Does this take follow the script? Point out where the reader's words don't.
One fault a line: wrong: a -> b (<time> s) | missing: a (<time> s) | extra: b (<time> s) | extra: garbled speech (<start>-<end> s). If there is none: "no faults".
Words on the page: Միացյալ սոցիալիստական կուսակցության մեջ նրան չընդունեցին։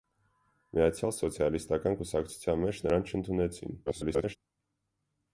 extra: garbled speech (3.9-4.4 s)